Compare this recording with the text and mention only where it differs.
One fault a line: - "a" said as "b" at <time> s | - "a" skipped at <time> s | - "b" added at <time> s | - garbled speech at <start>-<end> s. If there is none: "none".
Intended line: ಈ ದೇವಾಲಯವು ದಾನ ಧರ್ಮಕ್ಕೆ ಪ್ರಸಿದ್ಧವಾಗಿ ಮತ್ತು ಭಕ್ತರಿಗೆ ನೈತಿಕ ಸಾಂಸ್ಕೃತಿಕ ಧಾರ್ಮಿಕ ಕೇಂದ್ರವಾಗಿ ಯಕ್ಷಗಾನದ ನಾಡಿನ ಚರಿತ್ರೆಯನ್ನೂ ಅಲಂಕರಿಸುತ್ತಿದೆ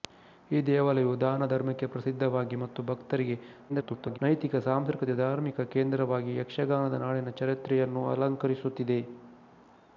- garbled speech at 3.7-4.2 s